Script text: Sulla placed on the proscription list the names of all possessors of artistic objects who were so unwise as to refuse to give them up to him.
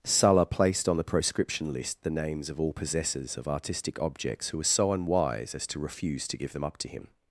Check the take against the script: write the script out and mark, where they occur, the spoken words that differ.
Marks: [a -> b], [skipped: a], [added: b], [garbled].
Sulla placed on the proscription list the names of all possessors of artistic objects who were so unwise as to refuse to give them up to him.